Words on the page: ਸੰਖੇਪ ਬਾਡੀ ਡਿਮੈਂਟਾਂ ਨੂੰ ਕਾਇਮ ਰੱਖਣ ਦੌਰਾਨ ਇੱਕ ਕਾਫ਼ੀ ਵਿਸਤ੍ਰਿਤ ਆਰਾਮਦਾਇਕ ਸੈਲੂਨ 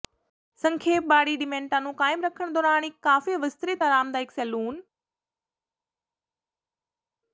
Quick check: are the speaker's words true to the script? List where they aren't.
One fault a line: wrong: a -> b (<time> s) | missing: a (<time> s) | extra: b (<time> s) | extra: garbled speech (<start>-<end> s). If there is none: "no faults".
no faults